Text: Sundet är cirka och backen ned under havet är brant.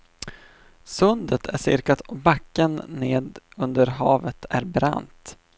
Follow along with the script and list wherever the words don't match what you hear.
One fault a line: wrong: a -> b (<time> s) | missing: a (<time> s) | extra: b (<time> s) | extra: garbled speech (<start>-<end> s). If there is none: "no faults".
no faults